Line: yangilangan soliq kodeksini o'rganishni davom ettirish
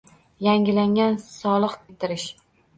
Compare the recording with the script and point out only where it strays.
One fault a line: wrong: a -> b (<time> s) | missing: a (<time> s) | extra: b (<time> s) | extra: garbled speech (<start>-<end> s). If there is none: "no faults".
missing: kodeksini o'rganishni davom (1.8 s)